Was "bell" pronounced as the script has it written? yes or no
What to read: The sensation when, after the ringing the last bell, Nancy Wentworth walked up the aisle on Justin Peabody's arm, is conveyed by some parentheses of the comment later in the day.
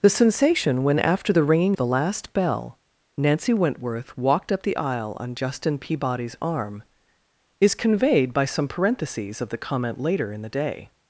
yes